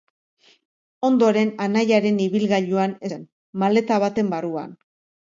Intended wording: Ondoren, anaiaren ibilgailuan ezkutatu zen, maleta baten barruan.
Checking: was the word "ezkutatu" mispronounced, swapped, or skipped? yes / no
yes